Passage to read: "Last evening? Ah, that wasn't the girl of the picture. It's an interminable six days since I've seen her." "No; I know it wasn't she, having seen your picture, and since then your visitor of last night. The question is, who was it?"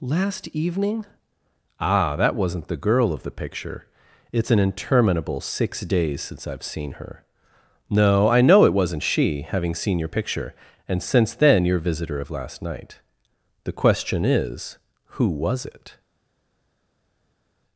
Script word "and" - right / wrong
right